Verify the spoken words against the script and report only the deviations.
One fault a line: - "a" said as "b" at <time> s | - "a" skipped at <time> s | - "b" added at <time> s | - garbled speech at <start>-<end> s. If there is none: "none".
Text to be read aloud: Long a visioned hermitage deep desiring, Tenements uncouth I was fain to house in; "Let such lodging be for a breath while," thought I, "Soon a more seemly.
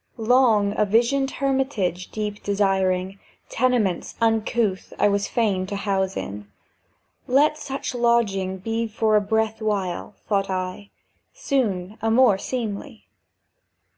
none